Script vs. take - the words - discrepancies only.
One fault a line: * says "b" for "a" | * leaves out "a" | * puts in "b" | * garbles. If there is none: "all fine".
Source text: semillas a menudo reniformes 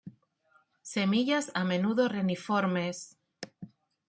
all fine